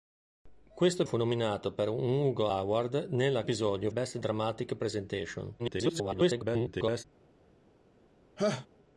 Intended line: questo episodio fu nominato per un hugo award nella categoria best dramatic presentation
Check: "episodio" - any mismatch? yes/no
yes